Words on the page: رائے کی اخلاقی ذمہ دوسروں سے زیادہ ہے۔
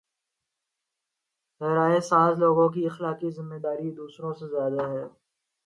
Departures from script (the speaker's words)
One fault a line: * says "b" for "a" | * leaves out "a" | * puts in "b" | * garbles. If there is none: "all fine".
* puts in "ساز لوگوں"
* puts in "داری"